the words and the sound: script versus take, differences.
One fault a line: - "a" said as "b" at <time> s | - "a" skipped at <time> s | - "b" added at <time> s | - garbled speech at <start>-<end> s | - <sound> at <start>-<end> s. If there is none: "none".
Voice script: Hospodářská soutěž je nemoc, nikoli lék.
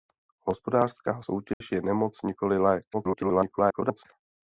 - dropout at 1.5-1.6 s
- garbled speech at 2.9-4.0 s